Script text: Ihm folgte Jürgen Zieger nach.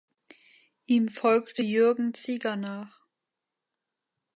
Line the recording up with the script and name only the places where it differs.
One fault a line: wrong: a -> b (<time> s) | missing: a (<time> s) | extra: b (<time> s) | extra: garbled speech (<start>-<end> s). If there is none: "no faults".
no faults